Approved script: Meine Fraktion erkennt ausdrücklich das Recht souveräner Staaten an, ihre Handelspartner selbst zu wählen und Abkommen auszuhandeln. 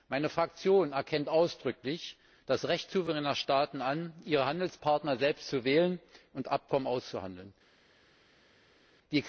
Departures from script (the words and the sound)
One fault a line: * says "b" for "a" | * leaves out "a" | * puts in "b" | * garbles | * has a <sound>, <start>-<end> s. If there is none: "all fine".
all fine